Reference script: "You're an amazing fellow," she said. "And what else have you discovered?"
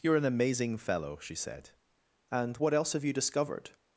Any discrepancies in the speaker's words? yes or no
no